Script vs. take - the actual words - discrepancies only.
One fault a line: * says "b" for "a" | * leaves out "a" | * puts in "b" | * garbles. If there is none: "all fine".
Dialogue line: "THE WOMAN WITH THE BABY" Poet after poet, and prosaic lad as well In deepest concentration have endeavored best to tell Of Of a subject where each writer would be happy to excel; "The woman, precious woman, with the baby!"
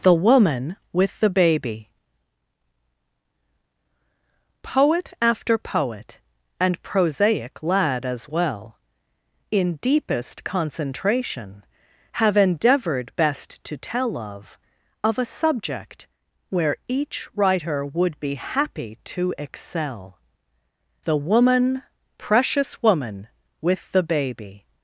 all fine